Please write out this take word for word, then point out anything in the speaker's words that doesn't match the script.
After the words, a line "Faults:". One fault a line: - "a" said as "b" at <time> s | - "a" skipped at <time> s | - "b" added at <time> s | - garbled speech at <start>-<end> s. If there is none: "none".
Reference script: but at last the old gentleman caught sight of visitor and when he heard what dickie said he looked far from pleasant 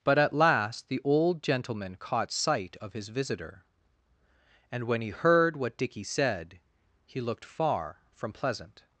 but at last the old gentleman caught sight of his visitor and when he heard what dickie said he looked far from pleasant
Faults:
- "his" added at 2.9 s